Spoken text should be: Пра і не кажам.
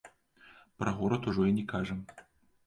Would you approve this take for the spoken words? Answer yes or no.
no